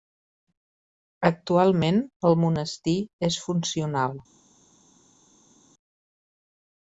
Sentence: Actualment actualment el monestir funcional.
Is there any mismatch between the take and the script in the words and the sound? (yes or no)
yes